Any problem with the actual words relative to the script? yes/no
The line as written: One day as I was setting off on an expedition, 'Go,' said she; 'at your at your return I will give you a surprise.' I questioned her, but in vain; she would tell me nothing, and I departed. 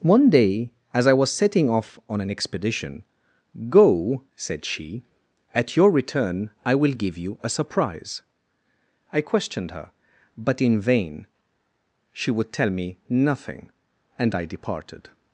yes